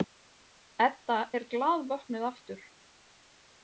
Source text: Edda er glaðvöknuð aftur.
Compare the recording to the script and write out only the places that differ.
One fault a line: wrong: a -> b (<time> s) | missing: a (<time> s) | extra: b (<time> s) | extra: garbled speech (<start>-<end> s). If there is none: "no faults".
no faults